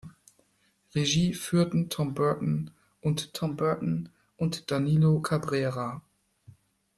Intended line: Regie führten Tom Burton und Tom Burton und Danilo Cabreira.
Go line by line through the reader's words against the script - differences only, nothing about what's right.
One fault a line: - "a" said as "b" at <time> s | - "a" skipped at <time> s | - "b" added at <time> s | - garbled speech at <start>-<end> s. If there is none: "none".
none